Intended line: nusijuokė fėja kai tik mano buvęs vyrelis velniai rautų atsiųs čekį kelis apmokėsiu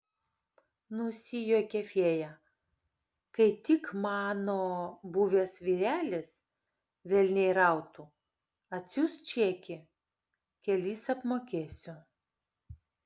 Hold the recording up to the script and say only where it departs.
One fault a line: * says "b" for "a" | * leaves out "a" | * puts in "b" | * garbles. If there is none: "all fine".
all fine